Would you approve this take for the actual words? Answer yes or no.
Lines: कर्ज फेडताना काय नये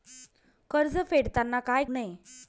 yes